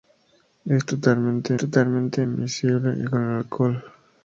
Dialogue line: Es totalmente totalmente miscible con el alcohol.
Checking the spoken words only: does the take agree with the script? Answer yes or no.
yes